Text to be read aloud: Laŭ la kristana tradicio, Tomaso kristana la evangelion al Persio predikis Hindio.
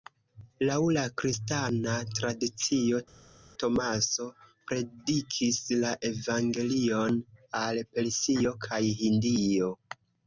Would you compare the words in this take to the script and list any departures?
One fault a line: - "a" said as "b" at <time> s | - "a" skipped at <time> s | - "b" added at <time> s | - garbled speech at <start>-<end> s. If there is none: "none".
- "kristana" said as "predikis" at 4.7 s
- "predikis" said as "kaj" at 8.7 s